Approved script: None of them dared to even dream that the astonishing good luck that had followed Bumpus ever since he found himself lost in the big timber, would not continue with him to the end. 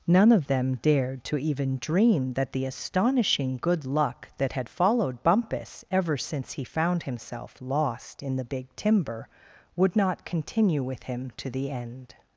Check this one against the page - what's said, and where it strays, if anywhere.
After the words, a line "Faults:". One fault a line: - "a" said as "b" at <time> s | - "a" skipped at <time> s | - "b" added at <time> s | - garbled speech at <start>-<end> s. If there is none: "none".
None of them dared to even dream that the astonishing good luck that had followed Bumpus ever since he found himself lost in the big timber, would not continue with him to the end.
Faults:
none